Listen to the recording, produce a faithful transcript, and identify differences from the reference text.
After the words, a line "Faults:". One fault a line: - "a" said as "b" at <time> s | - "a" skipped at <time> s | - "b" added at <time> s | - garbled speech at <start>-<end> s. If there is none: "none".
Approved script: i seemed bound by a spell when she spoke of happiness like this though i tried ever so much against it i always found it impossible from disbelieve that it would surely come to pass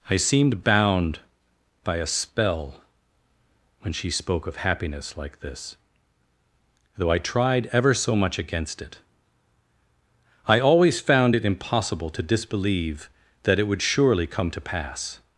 i seemed bound by a spell when she spoke of happiness like this though i tried ever so much against it i always found it impossible to disbelieve that it would surely come to pass
Faults:
- "from" said as "to" at 12.1 s